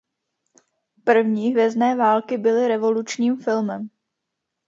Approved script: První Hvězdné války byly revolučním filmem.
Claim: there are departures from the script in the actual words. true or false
false